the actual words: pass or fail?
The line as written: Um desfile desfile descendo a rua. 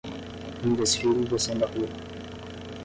fail